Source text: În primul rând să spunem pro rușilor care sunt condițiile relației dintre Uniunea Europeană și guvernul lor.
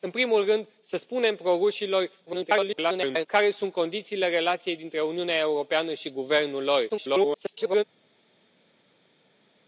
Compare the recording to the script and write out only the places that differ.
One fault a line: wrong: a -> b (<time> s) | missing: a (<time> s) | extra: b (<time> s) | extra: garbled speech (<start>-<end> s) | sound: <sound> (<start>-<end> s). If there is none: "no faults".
extra: garbled speech (2.3-3.3 s)
extra: garbled speech (6.9-7.8 s)